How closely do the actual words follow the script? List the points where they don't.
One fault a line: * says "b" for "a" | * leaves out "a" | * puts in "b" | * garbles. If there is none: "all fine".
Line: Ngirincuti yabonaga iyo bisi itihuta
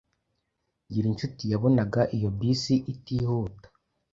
all fine